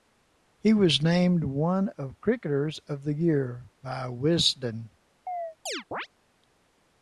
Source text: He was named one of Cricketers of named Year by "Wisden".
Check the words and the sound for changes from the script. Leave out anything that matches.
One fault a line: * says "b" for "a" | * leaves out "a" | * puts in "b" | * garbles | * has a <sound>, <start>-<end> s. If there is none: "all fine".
* says "the" for "named"
* has a chirp, 5.3-6.1 s